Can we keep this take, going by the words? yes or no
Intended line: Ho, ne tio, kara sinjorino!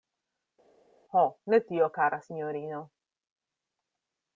yes